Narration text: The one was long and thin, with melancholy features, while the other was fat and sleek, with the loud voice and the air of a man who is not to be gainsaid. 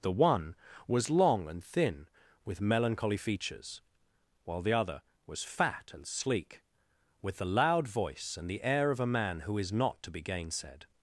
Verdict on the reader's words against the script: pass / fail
pass